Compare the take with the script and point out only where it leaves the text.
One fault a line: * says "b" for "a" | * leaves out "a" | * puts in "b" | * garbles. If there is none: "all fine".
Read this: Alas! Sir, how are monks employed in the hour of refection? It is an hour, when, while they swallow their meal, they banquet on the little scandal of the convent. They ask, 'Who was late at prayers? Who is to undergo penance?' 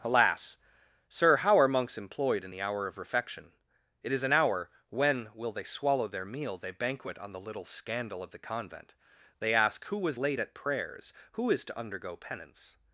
* says "will" for "while"